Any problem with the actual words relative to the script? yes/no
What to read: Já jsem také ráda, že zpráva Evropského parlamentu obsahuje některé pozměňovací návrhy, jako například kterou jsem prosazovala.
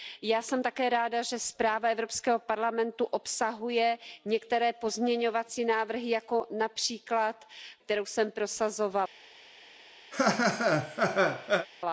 no